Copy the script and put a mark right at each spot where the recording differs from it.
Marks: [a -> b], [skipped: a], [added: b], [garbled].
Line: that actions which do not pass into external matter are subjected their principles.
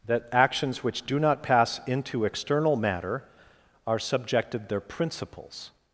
that actions which do not pass into external matter are subjected their principles.